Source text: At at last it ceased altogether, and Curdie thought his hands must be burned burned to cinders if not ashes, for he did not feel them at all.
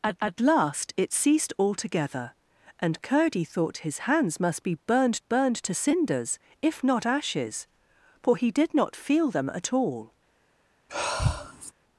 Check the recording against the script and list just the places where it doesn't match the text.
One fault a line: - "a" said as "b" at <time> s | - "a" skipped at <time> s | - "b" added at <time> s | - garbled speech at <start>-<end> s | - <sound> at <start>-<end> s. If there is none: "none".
- sigh at 10.9-11.7 s